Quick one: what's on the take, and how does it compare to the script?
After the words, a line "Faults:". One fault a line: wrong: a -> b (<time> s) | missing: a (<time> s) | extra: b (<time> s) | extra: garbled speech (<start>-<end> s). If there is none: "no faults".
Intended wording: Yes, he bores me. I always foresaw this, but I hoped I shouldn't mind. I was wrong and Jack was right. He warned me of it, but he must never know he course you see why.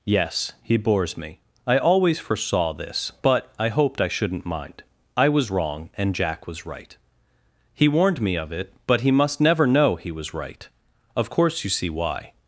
Yes, he bores me. I always foresaw this, but I hoped I shouldn't mind. I was wrong and Jack was right. He warned me of it, but he must never know he was right. Of course you see why.
Faults:
extra: was right Of (10.1 s)